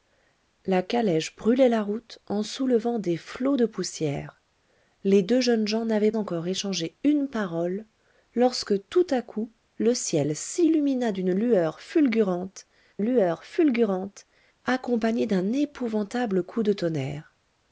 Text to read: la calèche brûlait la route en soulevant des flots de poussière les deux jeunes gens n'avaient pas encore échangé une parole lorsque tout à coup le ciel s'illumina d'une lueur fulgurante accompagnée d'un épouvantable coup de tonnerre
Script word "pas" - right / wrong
wrong